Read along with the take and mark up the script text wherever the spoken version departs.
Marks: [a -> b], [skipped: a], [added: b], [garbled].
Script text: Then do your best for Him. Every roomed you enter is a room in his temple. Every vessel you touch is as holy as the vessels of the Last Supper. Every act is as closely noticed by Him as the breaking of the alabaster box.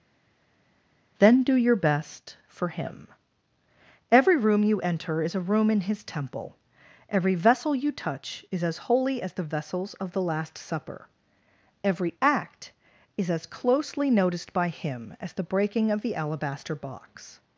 Then do your best for Him. Every [roomed -> room] you enter is a room in his temple. Every vessel you touch is as holy as the vessels of the Last Supper. Every act is as closely noticed by Him as the breaking of the alabaster box.